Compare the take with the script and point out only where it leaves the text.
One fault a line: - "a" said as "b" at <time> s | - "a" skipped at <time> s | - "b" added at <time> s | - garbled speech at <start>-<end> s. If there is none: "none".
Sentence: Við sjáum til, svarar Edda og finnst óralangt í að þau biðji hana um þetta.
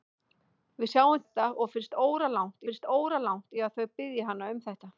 - "til svarar Edda og" said as "Edda og finnst óralangt" at 1.3 s